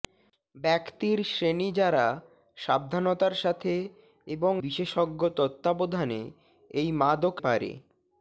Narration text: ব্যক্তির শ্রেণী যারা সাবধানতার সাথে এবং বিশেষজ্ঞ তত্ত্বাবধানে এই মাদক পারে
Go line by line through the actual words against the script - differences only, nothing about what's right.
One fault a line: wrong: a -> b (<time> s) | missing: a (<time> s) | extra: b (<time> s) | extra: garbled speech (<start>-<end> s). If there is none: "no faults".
no faults